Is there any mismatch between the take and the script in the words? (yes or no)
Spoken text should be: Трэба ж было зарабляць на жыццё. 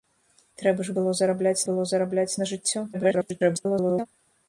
yes